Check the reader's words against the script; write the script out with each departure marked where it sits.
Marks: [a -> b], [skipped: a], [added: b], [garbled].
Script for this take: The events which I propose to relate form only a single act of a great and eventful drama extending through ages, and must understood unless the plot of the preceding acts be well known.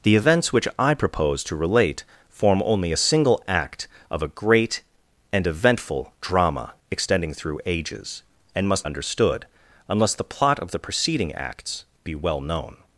The events which I propose to relate form only a single act of a great and eventful drama extending through ages, and must understood unless the plot of the preceding acts be well known.